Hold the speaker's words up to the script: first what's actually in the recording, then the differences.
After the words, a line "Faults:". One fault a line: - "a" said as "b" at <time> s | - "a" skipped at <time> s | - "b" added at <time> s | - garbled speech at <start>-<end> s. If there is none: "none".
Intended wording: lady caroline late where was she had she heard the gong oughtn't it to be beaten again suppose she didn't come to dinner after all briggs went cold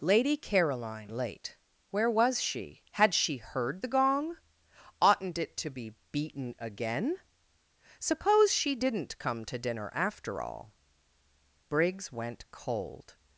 lady caroline late where was she had she heard the gong oughtn't it to be beaten again suppose she didn't come to dinner after all briggs went cold
Faults:
none